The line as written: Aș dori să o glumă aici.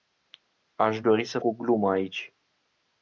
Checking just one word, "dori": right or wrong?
right